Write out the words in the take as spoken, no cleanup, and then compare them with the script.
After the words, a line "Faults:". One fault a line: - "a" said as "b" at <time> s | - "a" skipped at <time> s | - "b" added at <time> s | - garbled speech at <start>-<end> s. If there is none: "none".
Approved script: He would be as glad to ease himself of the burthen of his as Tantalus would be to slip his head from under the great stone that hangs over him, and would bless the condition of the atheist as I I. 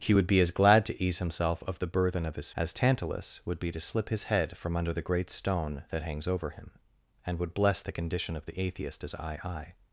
He would be as glad to ease himself of the burthen of his as Tantalus would be to slip his head from under the great stone that hangs over him, and would bless the condition of the atheist as I I.
Faults:
none